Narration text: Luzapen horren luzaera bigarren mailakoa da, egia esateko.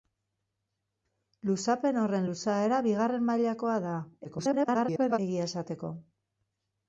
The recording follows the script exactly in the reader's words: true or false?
false